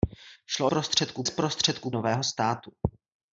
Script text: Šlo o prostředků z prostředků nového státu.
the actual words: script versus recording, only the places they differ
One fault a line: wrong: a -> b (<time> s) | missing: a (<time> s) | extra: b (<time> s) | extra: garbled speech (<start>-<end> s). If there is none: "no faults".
no faults